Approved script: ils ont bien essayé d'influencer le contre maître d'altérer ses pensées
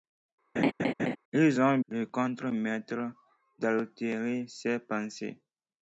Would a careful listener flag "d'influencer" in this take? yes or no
yes